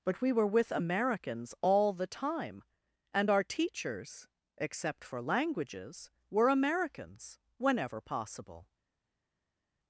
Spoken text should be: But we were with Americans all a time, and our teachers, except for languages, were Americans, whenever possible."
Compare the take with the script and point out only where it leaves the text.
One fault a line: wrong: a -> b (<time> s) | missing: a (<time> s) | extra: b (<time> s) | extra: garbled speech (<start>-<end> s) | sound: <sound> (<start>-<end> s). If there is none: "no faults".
wrong: a -> the (1.9 s)